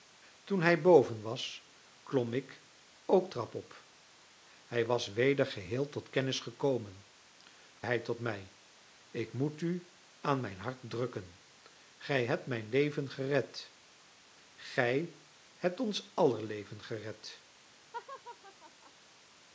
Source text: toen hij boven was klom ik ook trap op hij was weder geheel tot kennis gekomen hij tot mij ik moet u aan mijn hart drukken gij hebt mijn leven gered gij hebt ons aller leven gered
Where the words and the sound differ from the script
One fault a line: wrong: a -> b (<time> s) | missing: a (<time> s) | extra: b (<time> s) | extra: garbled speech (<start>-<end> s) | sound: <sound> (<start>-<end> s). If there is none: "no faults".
sound: laugh (17.9-18.9 s)